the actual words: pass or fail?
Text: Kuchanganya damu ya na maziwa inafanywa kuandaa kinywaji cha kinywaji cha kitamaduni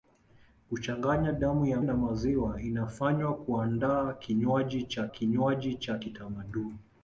pass